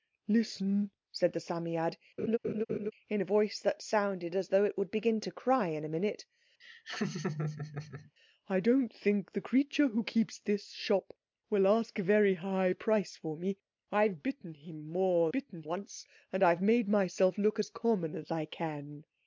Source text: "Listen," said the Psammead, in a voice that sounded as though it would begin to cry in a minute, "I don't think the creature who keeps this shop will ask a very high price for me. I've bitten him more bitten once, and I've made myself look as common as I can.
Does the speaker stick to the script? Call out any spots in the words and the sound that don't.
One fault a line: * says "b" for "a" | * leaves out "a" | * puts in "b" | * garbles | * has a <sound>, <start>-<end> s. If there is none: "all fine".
* has a laugh, 2.2-2.9 s
* has a laugh, 6.6-8.1 s